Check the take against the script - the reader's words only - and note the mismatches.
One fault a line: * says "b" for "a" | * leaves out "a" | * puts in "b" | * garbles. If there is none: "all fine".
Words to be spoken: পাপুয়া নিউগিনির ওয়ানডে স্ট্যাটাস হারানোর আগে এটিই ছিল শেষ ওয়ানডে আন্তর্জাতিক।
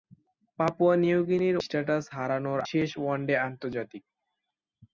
* leaves out "ওয়ানডে"
* leaves out "আগে এটিই ছিল"